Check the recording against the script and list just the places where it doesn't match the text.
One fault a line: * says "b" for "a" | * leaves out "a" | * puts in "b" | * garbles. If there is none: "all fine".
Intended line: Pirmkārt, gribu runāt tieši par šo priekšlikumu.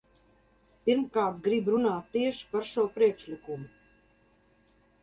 all fine